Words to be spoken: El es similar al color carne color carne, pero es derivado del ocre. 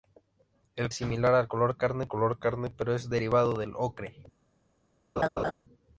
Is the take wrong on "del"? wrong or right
right